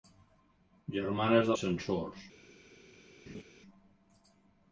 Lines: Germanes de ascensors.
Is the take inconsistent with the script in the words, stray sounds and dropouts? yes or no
yes